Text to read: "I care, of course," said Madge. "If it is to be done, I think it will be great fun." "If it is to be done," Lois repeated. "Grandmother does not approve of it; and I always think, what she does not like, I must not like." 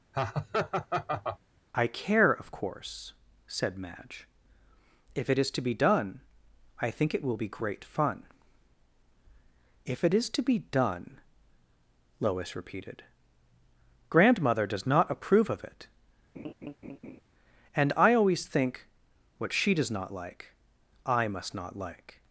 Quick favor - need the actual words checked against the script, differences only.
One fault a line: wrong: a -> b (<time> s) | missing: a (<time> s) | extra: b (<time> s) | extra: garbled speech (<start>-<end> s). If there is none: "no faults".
no faults